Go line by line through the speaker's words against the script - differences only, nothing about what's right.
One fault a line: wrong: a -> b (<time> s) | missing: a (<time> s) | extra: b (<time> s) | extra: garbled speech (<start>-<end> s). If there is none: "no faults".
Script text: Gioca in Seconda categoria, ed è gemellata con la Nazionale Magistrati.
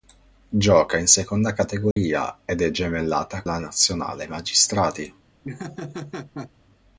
missing: con (3.4 s)